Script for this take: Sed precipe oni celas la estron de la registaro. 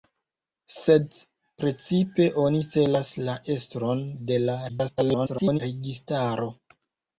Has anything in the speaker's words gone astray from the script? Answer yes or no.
yes